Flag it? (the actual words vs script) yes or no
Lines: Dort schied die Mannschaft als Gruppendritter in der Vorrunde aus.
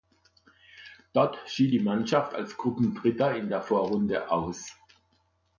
no